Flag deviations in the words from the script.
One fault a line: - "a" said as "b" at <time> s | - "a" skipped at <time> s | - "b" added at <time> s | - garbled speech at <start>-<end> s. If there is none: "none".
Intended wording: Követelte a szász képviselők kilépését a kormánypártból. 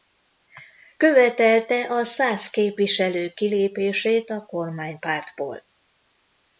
none